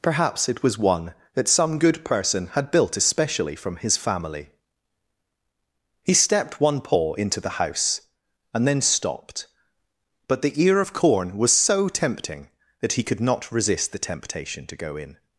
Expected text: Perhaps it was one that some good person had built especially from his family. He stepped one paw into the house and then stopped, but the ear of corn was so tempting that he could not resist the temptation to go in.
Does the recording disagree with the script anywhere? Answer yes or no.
no